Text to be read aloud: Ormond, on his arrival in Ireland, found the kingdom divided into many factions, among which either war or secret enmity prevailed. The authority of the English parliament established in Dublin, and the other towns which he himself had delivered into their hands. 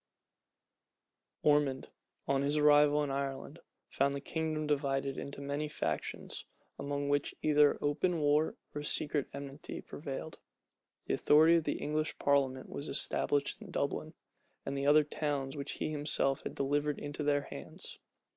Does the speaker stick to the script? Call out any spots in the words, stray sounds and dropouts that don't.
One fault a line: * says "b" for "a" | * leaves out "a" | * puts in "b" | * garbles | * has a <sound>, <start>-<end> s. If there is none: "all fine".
* puts in "open"
* puts in "was"